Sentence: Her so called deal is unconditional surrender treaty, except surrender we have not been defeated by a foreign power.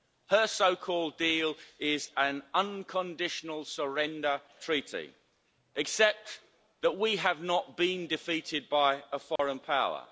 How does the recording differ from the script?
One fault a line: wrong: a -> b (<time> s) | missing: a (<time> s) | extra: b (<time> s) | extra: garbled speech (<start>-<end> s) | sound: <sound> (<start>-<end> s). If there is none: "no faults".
extra: an (2.2 s)
wrong: surrender -> that (6.8 s)
sound: dropout (9.4-9.4 s)